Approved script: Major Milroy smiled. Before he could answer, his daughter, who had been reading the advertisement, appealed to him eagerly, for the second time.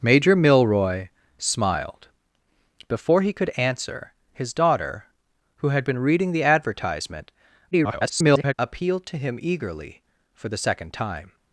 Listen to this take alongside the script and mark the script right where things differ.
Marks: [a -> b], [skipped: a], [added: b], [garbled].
Major Milroy smiled. Before he could answer, his daughter, who had been reading the advertisement, [garbled] appealed to him eagerly, for the second time.